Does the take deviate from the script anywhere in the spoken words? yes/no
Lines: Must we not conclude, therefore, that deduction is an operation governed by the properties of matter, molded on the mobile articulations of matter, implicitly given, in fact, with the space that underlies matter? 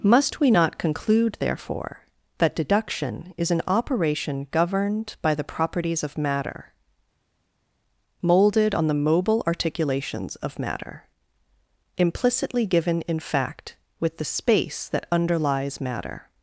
no